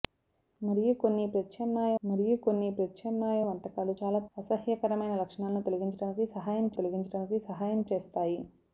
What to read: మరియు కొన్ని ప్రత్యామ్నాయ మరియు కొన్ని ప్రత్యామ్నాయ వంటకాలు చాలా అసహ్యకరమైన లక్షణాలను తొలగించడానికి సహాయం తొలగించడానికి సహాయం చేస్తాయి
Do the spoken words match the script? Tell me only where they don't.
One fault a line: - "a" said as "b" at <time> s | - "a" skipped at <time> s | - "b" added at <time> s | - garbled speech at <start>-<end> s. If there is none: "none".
none